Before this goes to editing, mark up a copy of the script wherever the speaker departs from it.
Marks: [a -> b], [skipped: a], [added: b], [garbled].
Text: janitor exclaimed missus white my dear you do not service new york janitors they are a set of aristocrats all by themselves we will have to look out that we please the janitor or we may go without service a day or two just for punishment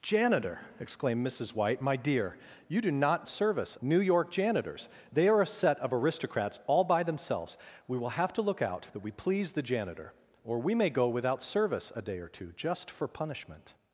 janitor exclaimed missus white my dear you do not service new york janitors they are a set of aristocrats all by themselves we will have to look out that we please the janitor or we may go without service a day or two just for punishment